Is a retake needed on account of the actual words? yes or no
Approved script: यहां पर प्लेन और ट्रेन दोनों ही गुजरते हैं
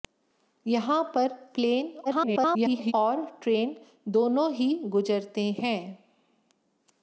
yes